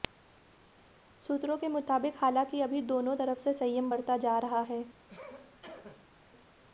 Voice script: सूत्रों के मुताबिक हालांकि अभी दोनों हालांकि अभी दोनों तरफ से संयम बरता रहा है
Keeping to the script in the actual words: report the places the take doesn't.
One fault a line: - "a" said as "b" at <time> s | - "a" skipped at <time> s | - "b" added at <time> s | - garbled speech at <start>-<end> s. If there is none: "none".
- "हालांकि अभी दोनों" skipped at 3.1 s
- "जा" added at 4.2 s